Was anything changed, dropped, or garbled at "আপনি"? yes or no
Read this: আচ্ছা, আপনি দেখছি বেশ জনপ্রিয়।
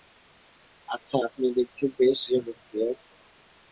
no